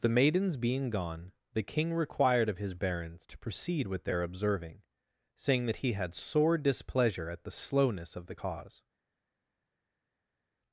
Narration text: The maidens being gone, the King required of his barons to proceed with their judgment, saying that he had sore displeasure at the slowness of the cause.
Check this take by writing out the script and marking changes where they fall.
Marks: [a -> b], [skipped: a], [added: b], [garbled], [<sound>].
The maidens being gone, the King required of his barons to proceed with their [judgment, -> observing] saying that he had sore displeasure at the slowness of the cause.